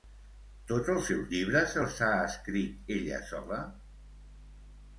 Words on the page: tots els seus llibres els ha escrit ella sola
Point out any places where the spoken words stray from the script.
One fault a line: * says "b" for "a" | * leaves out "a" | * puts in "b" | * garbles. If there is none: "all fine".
all fine